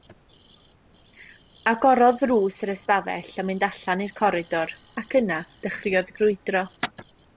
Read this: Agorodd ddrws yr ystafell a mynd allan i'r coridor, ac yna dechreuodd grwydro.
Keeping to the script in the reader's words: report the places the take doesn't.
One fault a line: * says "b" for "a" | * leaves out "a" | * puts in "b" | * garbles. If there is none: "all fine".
all fine